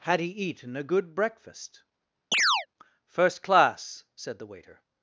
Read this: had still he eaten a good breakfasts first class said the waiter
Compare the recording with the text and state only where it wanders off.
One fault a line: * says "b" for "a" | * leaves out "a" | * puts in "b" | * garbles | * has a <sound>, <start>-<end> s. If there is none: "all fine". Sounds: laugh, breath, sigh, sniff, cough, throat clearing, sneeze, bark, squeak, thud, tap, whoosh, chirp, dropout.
* leaves out "still"
* says "breakfast" for "breakfasts"
* has a chirp, 2.3-2.7 s